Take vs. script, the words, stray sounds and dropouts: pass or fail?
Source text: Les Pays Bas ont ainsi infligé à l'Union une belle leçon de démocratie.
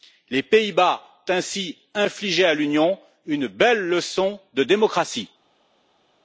fail